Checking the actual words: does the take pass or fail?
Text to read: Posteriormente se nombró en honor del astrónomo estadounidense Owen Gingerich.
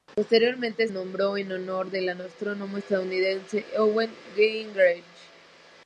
fail